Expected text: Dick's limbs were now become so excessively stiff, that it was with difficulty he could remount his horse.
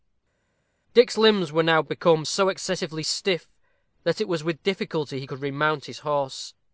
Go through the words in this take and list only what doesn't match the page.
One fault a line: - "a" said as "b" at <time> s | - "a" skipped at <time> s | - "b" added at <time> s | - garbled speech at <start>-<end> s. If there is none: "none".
none